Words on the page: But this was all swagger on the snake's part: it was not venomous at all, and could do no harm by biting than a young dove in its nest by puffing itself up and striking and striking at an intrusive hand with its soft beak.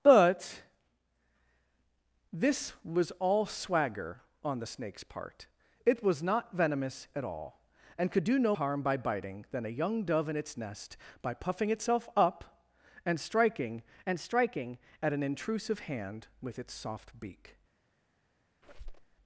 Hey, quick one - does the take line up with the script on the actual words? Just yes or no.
yes